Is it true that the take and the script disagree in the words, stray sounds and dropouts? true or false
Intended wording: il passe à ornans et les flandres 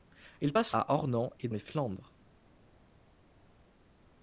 false